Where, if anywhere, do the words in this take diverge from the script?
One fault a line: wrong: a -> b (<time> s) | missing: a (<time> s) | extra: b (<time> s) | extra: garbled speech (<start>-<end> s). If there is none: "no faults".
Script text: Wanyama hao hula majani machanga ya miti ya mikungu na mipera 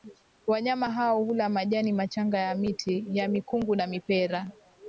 no faults